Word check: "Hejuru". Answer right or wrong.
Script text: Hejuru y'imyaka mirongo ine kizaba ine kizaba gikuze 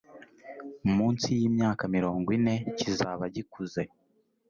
wrong